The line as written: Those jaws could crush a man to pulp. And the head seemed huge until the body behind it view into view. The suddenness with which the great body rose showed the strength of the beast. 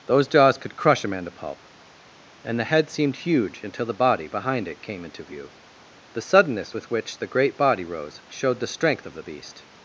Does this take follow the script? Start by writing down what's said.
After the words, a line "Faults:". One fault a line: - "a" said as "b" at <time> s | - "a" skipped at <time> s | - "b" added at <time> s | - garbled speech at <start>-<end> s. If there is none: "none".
Those jaws could crush a man to pulp. And the head seemed huge until the body behind it came into view. The suddenness with which the great body rose showed the strength of the beast.
Faults:
- "view" said as "came" at 4.8 s